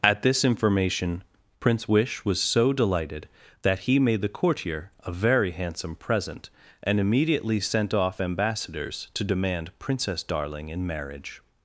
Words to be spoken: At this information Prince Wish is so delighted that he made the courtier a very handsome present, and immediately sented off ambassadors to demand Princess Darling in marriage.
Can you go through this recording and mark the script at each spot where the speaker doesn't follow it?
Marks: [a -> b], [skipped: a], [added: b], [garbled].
At this information Prince Wish [is -> was] so delighted that he made the courtier a very handsome present, and immediately [sented -> sent] off ambassadors to demand Princess Darling in marriage.